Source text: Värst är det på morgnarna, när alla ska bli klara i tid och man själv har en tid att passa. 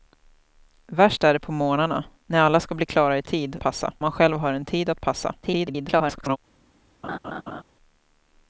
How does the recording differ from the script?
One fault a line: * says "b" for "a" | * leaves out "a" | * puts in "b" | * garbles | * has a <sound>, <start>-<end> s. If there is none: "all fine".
* says "passa" for "och"
* garbles
* has a laugh, 7.0-7.6 s